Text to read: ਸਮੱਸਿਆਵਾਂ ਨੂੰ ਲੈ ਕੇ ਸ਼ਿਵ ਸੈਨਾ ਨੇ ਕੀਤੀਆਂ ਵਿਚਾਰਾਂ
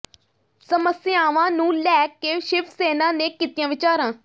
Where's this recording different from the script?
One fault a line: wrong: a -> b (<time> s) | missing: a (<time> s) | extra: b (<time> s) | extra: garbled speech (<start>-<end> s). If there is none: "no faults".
no faults